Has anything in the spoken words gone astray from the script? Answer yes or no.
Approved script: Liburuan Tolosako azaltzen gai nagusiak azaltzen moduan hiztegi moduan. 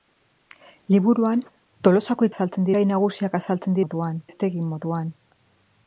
no